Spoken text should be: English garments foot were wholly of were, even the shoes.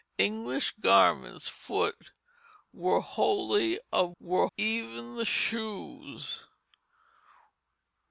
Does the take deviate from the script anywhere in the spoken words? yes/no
no